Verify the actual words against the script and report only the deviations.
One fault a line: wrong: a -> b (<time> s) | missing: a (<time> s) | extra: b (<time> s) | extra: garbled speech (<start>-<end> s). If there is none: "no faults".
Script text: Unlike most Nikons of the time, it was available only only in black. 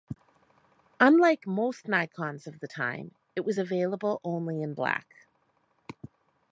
missing: only (4.6 s)